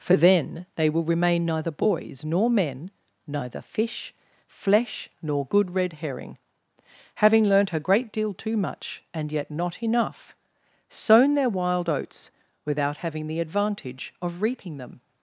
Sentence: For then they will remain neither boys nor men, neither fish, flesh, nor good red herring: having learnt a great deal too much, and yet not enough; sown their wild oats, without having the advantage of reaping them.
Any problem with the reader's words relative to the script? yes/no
no